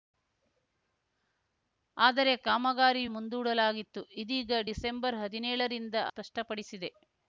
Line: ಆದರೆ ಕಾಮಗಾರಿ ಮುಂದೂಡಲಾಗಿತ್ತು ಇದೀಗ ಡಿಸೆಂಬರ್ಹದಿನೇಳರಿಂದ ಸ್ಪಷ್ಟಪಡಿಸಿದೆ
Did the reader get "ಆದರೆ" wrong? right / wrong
right